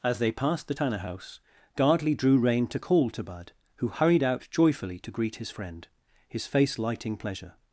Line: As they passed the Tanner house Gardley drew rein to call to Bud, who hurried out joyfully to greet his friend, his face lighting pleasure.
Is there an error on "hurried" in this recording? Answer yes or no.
no